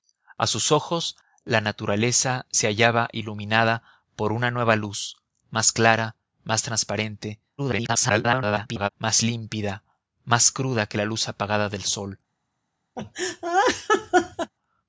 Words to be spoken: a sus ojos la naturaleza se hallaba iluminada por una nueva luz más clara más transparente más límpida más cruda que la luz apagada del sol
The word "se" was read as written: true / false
true